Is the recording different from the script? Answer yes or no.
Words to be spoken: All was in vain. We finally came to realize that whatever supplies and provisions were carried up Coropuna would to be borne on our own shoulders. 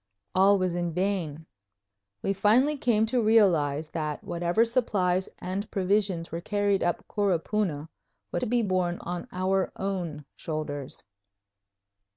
no